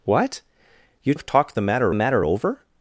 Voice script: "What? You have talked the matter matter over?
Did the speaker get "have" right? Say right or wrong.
right